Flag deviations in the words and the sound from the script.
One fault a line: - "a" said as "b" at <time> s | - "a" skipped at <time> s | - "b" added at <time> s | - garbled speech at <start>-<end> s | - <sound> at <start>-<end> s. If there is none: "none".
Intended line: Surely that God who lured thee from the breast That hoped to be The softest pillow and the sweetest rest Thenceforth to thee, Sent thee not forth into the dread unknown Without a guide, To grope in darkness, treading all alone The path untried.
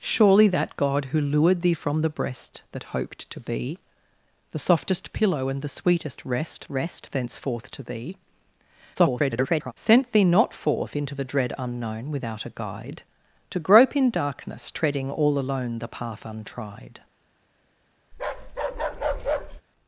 - "rest" added at 6.7 s
- garbled speech at 8.9-9.7 s
- bark at 18.1-19.6 s